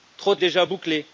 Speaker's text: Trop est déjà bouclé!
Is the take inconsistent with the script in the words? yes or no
no